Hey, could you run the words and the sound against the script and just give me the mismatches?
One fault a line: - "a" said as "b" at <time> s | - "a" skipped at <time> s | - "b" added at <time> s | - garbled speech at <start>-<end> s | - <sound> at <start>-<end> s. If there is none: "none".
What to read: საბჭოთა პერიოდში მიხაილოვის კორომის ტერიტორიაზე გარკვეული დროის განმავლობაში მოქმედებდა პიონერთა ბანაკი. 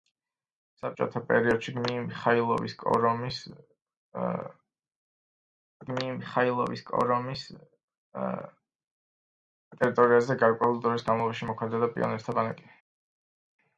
- "მიხაილოვის კორომის" added at 5.9 s